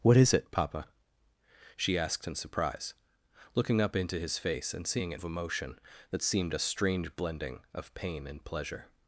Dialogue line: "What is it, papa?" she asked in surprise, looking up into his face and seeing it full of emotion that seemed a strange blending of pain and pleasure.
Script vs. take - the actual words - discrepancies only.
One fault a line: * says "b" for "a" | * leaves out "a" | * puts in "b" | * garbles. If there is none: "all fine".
* leaves out "full"